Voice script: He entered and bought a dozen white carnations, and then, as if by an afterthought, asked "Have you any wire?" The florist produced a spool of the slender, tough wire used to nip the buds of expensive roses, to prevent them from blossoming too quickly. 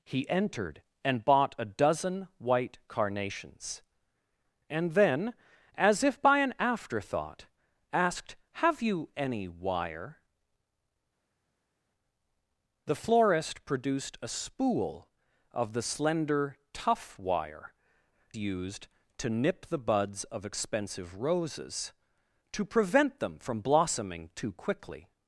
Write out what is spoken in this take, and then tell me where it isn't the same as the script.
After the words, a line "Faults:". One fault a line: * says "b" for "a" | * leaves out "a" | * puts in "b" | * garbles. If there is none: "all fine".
He entered and bought a dozen white carnations, and then, as if by an afterthought, asked "Have you any wire?" The florist produced a spool of the slender, tough wire used to nip the buds of expensive roses, to prevent them from blossoming too quickly.
Faults:
all fine